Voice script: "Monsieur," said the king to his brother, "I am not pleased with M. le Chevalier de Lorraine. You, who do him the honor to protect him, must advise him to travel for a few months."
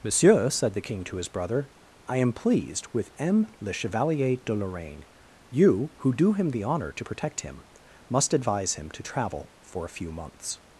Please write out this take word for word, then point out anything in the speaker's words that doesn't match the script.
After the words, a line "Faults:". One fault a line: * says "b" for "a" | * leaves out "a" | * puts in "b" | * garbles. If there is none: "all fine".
"Monsieur," said the king to his brother, "I am pleased with M. le Chevalier de Lorraine. You, who do him the honor to protect him, must advise him to travel for a few months."
Faults:
* leaves out "not"